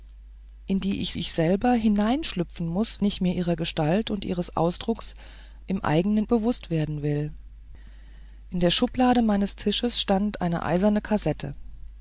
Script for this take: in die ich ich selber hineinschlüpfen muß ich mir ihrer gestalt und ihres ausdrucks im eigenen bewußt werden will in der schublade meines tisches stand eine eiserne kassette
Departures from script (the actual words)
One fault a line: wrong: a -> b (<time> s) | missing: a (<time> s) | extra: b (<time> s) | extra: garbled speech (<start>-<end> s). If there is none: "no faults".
no faults